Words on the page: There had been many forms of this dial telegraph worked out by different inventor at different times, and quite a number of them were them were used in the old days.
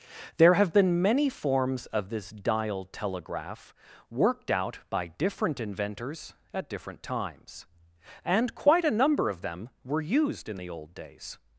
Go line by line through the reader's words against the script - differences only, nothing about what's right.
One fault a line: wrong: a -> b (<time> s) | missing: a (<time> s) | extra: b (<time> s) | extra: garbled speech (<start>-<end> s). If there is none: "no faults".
wrong: had -> have (0.6 s)
wrong: inventor -> inventors (5.6 s)
missing: them were (10.0 s)